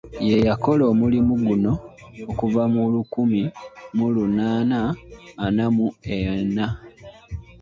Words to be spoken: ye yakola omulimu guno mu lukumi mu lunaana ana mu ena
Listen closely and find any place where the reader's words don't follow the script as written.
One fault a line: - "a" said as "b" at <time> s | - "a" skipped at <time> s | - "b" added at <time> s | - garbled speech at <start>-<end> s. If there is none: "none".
- "okuva" added at 2.3 s